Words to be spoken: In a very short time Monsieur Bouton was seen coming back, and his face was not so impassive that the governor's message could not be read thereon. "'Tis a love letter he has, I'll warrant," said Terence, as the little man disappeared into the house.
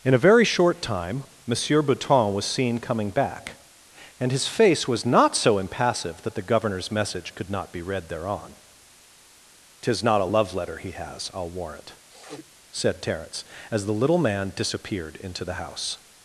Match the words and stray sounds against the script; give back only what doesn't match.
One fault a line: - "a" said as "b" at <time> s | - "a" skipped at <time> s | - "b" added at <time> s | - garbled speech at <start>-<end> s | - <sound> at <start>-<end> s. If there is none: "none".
- "not" added at 10.0 s
- sniff at 12.1-12.5 s